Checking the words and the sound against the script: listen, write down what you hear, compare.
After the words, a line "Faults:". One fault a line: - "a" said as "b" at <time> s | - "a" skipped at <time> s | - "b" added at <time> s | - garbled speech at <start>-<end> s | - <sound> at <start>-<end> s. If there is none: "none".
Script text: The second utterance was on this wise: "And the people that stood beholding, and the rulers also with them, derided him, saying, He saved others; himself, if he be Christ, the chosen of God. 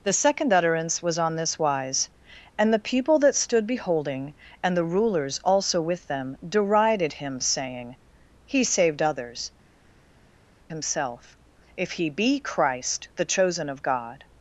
The second utterance was on this wise: "And the people that stood beholding, and the rulers also with them, derided him, saying, He saved others; himself, if he be Christ, the chosen of God.
Faults:
none